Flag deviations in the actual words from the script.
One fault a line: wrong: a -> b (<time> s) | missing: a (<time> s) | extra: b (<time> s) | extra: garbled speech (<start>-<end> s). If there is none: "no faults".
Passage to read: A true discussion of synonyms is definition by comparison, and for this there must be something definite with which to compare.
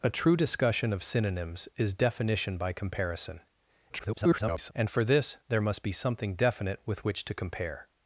extra: garbled speech (3.9-4.7 s)